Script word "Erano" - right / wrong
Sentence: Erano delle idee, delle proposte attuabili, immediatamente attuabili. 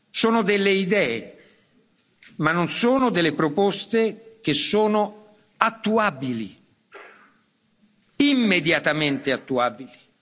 wrong